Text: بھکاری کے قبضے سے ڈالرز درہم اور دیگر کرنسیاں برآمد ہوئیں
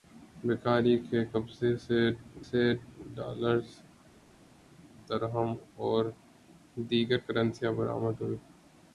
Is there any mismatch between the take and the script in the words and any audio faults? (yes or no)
yes